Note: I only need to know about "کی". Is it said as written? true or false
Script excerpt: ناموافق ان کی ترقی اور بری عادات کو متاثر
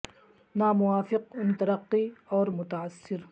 false